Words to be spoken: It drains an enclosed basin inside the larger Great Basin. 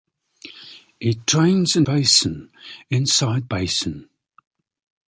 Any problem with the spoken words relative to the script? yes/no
yes